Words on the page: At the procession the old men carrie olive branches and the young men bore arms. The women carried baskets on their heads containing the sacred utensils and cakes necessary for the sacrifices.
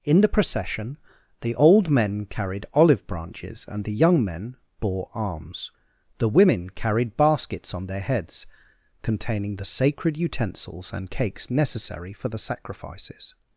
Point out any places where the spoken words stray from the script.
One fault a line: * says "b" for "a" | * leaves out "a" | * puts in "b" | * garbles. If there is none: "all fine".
* says "In" for "At"
* says "carried" for "carrie"